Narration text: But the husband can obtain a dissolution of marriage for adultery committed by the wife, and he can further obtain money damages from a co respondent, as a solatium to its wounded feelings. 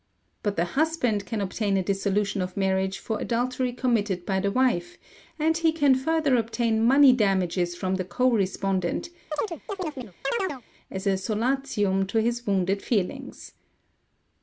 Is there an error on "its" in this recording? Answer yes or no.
yes